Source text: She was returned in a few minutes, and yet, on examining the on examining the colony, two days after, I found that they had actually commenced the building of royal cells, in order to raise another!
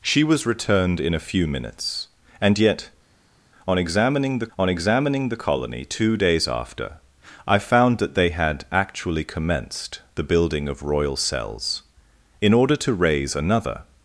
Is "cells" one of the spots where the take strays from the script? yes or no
no